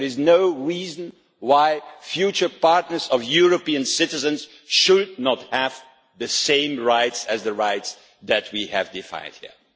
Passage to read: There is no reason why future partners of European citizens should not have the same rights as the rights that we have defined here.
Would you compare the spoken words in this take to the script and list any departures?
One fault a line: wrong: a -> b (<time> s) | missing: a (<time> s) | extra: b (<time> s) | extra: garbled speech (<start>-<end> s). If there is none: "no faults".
no faults